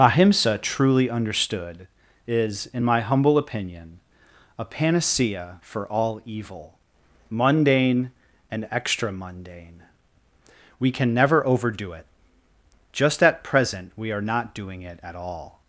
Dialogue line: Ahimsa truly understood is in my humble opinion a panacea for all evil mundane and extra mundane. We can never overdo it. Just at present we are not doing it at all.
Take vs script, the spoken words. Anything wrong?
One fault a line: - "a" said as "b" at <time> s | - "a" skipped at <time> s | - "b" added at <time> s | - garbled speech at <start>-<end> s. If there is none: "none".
none